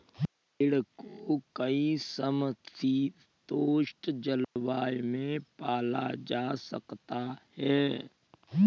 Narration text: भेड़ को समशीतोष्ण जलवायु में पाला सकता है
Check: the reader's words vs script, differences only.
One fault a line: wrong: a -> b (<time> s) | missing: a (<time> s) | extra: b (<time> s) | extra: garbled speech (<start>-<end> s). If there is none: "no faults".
extra: कई (1.6 s)
extra: जा (6.2 s)